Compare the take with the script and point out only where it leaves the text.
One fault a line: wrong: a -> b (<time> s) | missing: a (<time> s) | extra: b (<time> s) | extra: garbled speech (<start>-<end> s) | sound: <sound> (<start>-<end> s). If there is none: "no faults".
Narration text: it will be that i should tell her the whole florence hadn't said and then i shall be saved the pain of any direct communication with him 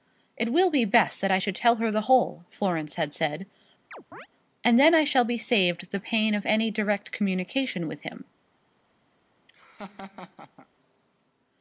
extra: best (0.8 s)
wrong: hadn't -> had (2.9 s)
sound: chirp (3.9-4.3 s)
sound: laugh (9.5-10.7 s)